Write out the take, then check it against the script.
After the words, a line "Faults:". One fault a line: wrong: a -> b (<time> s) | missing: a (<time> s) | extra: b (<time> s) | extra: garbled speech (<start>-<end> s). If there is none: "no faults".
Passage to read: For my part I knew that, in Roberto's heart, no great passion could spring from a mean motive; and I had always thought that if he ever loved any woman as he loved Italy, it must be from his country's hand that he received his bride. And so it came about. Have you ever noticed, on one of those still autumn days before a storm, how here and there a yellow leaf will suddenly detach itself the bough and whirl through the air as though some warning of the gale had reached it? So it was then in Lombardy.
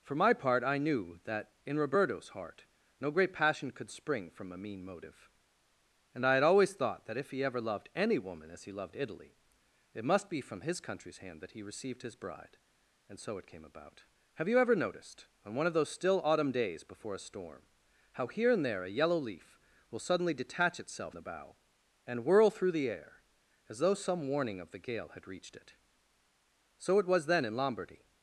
For my part I knew that, in Roberto's heart, no great passion could spring from a mean motive; and I had always thought that if he ever loved any woman as he loved Italy, it must be from his country's hand that he received his bride. And so it came about. Have you ever noticed, on one of those still autumn days before a storm, how here and there a yellow leaf will suddenly detach itself the bough and whirl through the air as though some warning of the gale had reached it? So it was then in Lombardy.
Faults:
no faults